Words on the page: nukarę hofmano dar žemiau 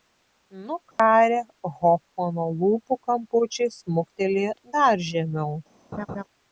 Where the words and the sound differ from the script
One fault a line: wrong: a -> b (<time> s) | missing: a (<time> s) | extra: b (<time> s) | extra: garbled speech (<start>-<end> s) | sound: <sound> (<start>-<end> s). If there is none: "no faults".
sound: dropout (0.9-1.0 s)
extra: lūpų kampučiai smuktelėjo (2.6 s)
sound: laugh (5.9-6.2 s)